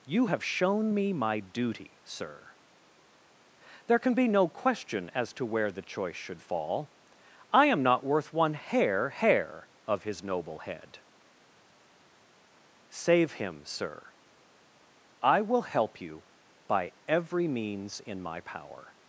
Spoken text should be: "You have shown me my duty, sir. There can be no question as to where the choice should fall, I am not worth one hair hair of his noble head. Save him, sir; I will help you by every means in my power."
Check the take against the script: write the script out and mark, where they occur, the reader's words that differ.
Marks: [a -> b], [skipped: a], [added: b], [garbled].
"You have shown me my duty, sir. There can be no question as to where the choice should fall, I am not worth one hair hair of his noble head. Save him, sir; I will help you by every means in my power."